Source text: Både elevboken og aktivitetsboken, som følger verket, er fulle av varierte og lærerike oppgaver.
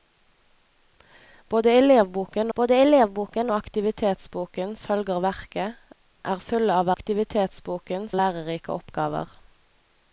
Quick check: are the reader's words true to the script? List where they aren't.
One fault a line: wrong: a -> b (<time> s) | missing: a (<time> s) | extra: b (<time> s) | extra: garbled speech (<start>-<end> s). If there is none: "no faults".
extra: både elevboken (2.6 s)
missing: som (4.8 s)
wrong: varierte -> aktivitetsboken (6.9 s)